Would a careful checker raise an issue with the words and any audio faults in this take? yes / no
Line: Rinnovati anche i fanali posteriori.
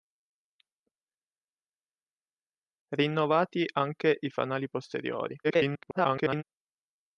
yes